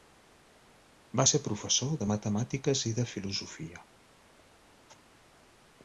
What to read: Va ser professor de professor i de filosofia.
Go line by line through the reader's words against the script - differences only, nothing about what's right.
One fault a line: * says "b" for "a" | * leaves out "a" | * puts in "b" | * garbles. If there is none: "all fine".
* says "matemàtiques" for "professor"